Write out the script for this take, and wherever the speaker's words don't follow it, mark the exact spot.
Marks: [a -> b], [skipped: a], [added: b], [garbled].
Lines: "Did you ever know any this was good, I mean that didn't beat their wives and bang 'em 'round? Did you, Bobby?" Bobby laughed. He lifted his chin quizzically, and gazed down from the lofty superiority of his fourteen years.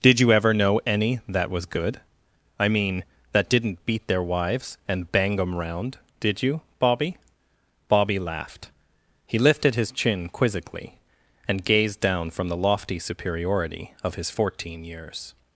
"Did you ever know any [this -> that] was good, I mean that didn't beat their wives and bang 'em 'round? Did you, Bobby?" Bobby laughed. He lifted his chin quizzically, and gazed down from the lofty superiority of his fourteen years.